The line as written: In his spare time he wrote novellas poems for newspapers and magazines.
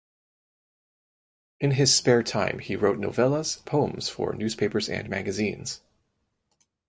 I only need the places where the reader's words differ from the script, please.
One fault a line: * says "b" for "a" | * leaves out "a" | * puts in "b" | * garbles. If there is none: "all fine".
all fine